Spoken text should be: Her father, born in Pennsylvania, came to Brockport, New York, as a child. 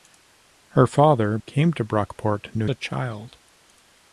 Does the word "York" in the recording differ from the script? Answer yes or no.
yes